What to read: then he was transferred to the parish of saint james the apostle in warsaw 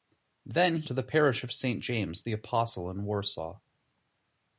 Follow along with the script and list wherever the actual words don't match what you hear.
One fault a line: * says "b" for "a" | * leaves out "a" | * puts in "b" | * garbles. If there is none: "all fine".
* leaves out "was transferred"